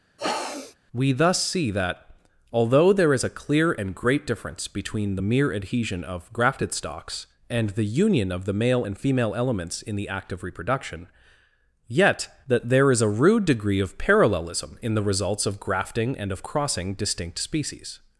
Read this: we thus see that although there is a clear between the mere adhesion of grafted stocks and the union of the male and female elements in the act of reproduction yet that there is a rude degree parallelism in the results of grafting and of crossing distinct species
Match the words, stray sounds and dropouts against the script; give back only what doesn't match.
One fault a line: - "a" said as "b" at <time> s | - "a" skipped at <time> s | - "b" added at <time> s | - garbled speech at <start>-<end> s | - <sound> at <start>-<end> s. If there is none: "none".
- sniff at 0.2-0.8 s
- "and great difference" added at 3.7 s
- "of" added at 13.8 s